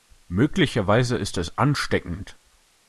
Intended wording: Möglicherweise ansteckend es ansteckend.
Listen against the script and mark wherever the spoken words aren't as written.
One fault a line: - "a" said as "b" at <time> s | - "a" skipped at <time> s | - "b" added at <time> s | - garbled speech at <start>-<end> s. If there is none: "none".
- "ansteckend" said as "ist" at 1.1 s